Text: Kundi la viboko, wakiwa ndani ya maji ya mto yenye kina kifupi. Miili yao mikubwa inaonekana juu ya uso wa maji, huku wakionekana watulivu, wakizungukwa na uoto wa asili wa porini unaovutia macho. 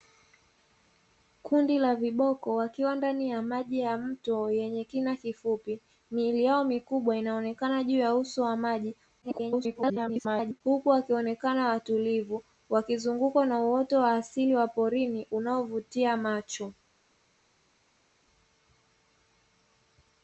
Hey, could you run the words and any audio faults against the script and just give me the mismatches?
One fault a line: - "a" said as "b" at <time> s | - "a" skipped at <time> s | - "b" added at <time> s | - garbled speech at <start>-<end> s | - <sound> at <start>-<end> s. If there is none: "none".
- garbled speech at 9.2-10.6 s